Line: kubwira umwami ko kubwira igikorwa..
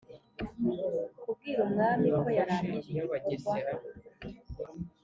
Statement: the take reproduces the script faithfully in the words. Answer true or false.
false